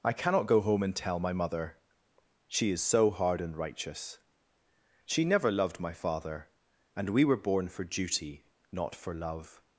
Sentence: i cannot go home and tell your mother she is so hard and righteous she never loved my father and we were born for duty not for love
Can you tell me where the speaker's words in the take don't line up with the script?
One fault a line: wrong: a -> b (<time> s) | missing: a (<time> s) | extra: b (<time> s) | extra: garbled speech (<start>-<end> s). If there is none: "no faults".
wrong: your -> my (1.2 s)